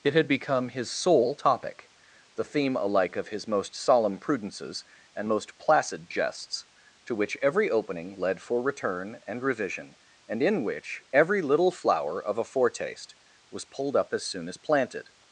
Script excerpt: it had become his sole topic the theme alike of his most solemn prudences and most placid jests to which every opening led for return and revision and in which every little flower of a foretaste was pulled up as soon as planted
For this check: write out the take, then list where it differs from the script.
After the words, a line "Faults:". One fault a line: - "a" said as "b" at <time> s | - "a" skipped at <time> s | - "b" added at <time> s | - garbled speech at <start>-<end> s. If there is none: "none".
it had become his sole topic the theme alike of his most solemn prudences and most placid jests to which every opening led for return and revision and in which every little flower of a foretaste was pulled up as soon as planted
Faults:
none